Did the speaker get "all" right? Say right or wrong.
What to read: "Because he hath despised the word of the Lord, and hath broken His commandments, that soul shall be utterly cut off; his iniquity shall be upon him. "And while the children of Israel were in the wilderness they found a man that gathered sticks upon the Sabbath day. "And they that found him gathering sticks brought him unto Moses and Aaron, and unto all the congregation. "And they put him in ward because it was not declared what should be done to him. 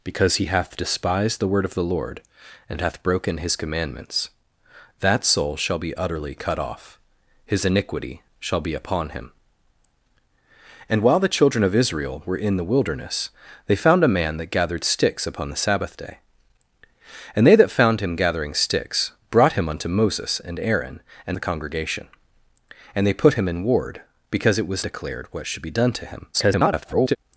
wrong